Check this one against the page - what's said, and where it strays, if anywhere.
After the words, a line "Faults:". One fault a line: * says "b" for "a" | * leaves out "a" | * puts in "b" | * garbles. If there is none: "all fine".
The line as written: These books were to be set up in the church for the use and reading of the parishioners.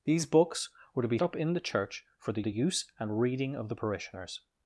These books were to be up in the church for the the use and reading of the parishioners.
Faults:
* leaves out "set"
* puts in "the"